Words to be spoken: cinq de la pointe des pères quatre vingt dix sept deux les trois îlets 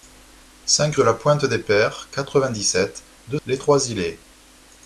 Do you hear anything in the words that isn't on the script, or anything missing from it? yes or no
no